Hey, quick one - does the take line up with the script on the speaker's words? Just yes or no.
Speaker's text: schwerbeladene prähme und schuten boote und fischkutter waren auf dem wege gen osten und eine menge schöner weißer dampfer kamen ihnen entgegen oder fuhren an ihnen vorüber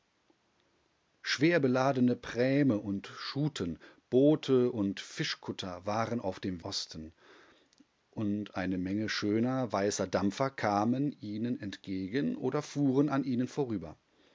no